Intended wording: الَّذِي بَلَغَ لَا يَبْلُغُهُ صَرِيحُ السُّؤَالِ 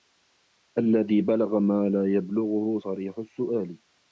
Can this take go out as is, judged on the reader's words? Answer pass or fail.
fail